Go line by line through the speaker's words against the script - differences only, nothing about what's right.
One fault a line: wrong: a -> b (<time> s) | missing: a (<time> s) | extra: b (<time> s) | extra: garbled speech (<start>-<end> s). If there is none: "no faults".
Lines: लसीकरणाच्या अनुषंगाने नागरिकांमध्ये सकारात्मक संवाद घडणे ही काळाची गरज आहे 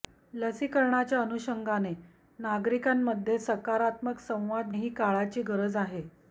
missing: घडणे (4.7 s)